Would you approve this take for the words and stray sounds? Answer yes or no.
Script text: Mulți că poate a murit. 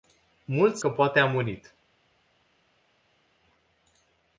yes